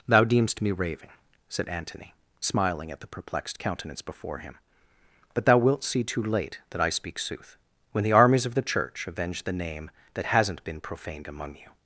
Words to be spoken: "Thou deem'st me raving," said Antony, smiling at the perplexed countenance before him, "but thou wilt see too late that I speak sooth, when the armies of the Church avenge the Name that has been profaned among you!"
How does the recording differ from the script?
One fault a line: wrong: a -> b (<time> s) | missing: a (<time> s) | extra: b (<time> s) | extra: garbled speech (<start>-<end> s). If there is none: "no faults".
wrong: has -> hasn't (10.2 s)